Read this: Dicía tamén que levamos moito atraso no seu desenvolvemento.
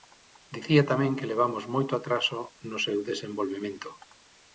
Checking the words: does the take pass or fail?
pass